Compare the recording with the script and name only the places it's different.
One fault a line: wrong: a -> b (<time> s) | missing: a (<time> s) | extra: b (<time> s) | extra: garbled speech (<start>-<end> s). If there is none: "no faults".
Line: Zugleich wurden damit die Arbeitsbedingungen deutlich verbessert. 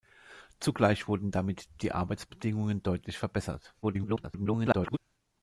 extra: garbled speech (3.8-5.0 s)